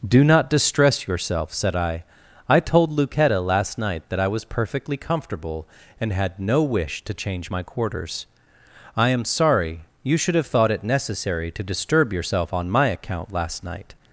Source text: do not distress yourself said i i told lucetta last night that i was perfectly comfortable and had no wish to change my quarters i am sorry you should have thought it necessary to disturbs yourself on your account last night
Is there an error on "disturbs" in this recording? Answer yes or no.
yes